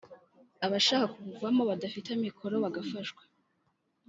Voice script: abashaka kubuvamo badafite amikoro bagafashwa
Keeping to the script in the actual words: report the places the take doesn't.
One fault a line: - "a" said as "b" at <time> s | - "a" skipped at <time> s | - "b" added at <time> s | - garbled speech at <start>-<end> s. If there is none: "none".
none